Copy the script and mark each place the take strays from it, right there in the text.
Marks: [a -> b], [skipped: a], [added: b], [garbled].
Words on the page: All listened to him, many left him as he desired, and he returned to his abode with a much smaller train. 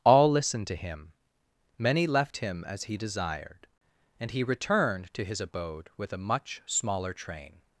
All listened to him, many left him as he desired, and he returned to his abode with a much smaller train.